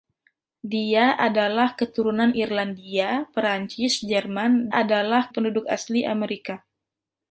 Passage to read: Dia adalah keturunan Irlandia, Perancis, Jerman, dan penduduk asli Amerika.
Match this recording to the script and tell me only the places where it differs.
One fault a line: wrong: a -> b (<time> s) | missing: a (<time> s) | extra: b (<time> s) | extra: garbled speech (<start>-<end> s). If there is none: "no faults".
wrong: dan -> adalah (4.7 s)